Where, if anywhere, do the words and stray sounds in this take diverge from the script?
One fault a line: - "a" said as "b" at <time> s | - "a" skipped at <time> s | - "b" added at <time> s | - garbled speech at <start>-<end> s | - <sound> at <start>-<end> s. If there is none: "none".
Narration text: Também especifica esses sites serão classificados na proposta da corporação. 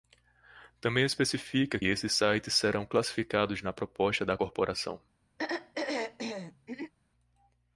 - throat clearing at 5.4-6.9 s